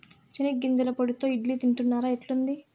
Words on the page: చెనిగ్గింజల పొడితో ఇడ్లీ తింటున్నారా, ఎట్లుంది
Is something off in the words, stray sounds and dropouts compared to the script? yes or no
no